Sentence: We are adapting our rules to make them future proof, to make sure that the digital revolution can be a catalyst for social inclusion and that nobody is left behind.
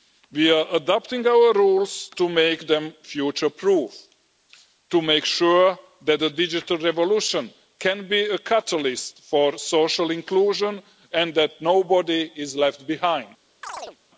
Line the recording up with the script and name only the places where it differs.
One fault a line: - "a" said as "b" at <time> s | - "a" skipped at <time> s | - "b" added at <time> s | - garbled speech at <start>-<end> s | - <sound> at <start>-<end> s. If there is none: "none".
- chirp at 13.6-14.0 s